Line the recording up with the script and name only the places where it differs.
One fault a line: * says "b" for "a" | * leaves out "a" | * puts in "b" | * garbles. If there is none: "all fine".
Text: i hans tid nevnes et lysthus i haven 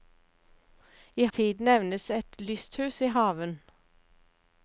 * leaves out "hans"